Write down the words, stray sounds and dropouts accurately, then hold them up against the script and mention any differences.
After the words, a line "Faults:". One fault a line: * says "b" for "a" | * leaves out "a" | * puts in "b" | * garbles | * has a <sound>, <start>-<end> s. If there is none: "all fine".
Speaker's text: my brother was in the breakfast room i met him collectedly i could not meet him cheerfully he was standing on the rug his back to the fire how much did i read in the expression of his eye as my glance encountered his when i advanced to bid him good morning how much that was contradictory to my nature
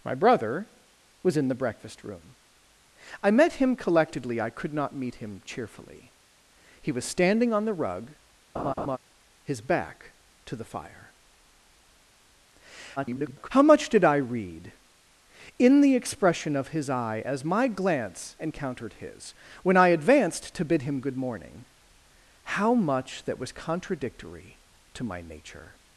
my brother was in the breakfast room i met him collectedly i could not meet him cheerfully he was standing on the rug his back to the fire [garbled] how much did i read in the expression of his eye as my glance encountered his when i advanced to bid him good morning how much that was contradictory to my nature
Faults:
* has a laugh, 8.6-9.0 s
* garbles